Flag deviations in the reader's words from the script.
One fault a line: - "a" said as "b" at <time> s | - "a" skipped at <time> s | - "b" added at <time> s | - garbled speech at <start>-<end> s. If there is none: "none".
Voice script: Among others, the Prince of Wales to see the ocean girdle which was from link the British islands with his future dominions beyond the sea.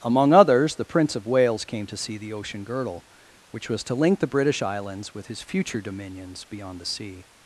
- "came" added at 1.6 s
- "from" said as "to" at 3.8 s